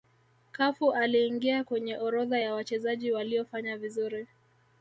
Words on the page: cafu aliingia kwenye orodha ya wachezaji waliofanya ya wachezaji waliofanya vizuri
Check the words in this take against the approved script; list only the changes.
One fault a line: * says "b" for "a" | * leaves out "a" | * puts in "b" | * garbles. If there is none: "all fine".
* leaves out "ya wachezaji waliofanya"